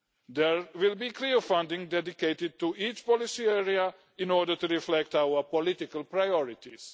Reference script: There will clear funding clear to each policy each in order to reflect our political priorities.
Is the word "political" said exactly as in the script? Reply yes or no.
yes